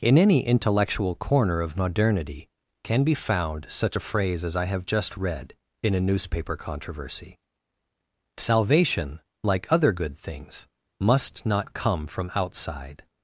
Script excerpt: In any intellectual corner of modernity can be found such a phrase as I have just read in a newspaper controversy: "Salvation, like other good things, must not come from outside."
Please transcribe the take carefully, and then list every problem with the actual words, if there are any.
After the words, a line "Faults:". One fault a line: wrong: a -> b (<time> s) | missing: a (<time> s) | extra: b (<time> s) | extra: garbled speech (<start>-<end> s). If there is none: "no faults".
In any intellectual corner of modernity can be found such a phrase as I have just read in a newspaper controversy: "Salvation, like other good things, must not come from outside."
Faults:
no faults